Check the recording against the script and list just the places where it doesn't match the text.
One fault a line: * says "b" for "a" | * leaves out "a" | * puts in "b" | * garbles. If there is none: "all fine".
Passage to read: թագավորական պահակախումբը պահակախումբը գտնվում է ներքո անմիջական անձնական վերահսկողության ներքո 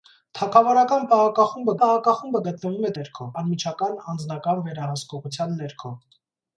all fine